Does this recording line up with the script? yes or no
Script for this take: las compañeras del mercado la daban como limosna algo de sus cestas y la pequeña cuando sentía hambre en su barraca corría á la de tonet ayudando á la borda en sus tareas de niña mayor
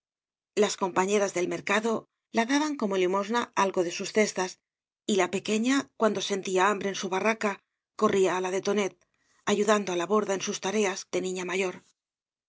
yes